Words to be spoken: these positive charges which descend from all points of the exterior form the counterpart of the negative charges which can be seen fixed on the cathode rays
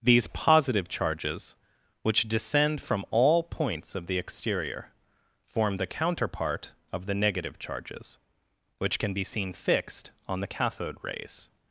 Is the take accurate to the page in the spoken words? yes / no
yes